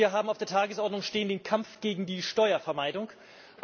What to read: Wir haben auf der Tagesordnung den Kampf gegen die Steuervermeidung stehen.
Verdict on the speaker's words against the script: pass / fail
pass